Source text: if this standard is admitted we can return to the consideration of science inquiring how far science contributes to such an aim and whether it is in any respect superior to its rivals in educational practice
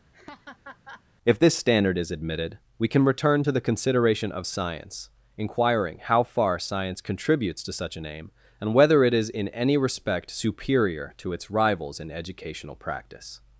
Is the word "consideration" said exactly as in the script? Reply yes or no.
yes